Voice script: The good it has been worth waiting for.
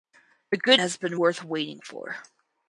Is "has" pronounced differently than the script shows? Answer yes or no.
no